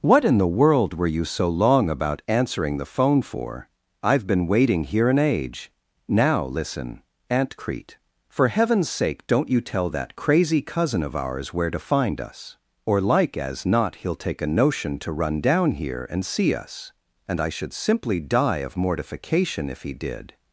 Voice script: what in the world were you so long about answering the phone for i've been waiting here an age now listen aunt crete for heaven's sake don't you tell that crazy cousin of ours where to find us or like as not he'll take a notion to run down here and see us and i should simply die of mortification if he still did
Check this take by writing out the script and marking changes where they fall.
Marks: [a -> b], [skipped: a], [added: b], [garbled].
what in the world were you so long about answering the phone for i've been waiting here an age now listen aunt crete for heaven's sake don't you tell that crazy cousin of ours where to find us or like as not he'll take a notion to run down here and see us and i should simply die of mortification if he [skipped: still] did